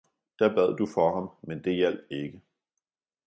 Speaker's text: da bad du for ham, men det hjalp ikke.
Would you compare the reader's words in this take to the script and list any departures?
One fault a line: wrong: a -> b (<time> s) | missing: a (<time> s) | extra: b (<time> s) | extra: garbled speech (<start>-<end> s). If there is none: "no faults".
no faults